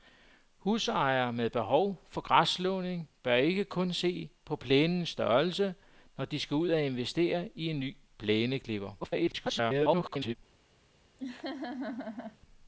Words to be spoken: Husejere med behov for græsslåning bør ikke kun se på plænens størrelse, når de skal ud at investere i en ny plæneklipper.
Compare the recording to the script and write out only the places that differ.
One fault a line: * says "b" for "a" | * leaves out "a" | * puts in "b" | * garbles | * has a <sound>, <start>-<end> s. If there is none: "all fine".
* garbles
* has a laugh, 11.2-12.4 s